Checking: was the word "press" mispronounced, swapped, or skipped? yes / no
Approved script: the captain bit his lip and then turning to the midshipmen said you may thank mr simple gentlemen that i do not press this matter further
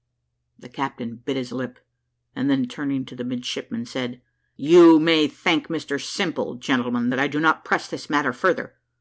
no